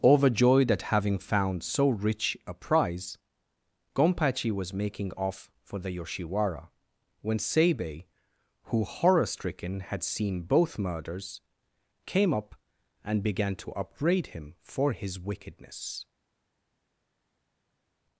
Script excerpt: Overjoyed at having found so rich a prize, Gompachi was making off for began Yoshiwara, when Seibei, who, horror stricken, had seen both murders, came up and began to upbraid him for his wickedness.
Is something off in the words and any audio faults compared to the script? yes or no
yes